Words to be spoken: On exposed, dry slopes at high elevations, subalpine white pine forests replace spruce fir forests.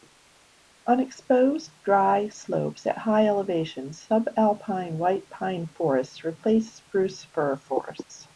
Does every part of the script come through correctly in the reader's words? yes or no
yes